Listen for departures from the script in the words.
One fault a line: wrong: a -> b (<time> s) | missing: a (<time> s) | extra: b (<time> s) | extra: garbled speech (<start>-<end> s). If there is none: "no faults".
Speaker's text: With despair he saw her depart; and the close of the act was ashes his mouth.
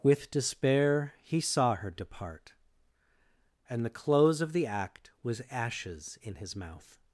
extra: in (6.2 s)